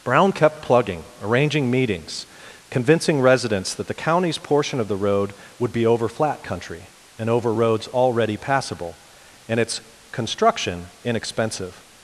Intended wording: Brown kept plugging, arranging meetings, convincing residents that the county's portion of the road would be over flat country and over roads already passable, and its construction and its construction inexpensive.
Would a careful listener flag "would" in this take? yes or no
no